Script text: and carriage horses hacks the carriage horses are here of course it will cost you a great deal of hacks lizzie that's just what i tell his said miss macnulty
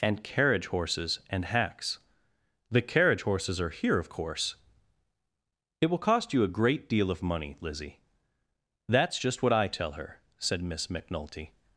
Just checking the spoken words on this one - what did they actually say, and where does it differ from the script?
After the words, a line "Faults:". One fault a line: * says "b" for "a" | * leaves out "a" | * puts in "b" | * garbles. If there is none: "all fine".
and carriage horses and hacks the carriage horses are here of course it will cost you a great deal of money lizzie that's just what i tell her said miss macnulty
Faults:
* puts in "and"
* says "money" for "hacks"
* says "her" for "his"